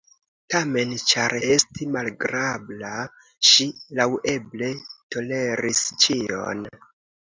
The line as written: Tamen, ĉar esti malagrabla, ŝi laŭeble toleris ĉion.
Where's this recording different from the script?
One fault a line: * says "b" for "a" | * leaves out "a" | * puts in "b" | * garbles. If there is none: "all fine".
all fine